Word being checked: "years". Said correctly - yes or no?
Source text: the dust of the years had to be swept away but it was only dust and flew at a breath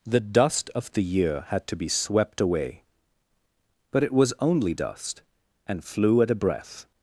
no